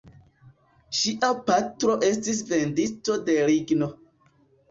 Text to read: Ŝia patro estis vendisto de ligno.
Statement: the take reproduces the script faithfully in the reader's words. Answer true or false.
true